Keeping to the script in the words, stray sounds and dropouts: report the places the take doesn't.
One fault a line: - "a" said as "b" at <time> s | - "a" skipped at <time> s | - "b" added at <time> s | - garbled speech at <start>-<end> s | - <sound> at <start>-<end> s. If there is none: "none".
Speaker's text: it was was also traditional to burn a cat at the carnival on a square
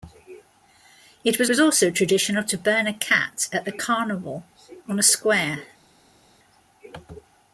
none